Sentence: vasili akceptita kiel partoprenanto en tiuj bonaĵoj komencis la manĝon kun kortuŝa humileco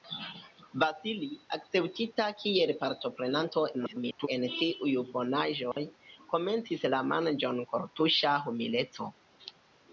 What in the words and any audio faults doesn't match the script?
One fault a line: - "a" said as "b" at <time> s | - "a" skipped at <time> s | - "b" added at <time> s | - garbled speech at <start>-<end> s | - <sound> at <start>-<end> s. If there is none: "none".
- garbled speech at 3.7-4.3 s
- dropout at 5.7-5.8 s
- "kun" skipped at 7.7 s